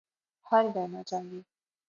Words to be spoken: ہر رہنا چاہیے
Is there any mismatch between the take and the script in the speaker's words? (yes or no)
no